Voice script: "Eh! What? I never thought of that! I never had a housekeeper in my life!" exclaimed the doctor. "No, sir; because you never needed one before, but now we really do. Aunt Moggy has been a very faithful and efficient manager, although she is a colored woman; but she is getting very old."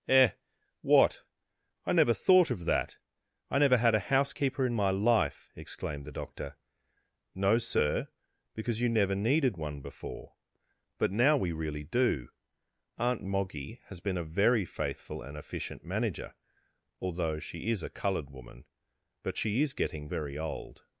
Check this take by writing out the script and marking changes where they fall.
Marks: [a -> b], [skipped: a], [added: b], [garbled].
"Eh! What? I never thought of that! I never had a housekeeper in my life!" exclaimed the doctor. "No, sir; because you never needed one before, but now we really do. Aunt Moggy has been a very faithful and efficient manager, although she is a colored woman; but she is getting very old."